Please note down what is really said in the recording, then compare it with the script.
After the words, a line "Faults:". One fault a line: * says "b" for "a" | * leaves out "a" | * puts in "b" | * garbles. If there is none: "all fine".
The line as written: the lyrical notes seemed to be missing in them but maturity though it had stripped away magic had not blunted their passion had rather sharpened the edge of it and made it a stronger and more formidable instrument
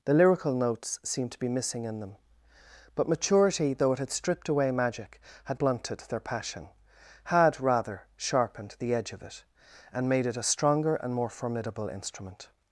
the lyrical notes seemed to be missing in them but maturity though it had stripped away magic had blunted their passion had rather sharpened the edge of it and made it a stronger and more formidable instrument
Faults:
* leaves out "not"